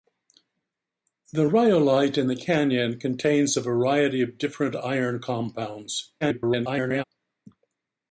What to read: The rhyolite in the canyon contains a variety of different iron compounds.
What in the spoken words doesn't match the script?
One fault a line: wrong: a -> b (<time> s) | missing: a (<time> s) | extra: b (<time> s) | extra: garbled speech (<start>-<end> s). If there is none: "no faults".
extra: garbled speech (6.2-7.0 s)